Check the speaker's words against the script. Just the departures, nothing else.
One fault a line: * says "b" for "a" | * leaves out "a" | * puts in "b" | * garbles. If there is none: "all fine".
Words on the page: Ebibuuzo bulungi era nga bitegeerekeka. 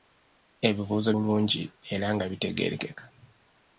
all fine